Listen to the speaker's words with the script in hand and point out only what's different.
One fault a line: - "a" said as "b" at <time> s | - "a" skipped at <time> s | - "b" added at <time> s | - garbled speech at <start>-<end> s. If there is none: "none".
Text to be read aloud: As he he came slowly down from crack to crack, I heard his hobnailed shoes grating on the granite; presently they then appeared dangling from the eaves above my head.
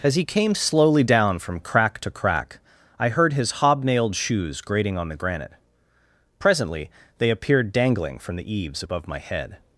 - "he" skipped at 0.2 s
- "then" skipped at 7.3 s